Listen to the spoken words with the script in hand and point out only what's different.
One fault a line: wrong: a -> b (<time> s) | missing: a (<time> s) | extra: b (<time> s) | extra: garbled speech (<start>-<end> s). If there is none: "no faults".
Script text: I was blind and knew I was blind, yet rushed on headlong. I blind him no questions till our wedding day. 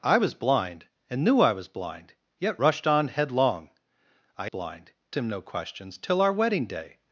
no faults